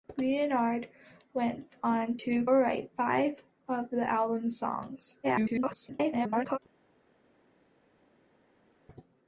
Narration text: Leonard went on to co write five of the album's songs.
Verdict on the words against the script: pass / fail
fail